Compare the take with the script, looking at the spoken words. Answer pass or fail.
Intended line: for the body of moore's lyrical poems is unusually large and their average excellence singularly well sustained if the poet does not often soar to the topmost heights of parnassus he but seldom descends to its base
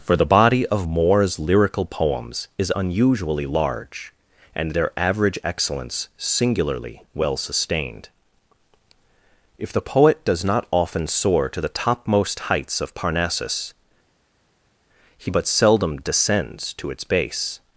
pass